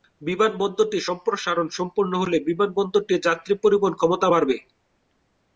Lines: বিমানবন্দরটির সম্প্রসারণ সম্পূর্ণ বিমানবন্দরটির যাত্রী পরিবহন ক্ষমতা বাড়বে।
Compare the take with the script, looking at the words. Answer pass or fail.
fail